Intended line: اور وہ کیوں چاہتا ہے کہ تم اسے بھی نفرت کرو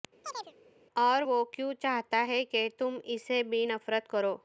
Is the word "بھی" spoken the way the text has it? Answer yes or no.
yes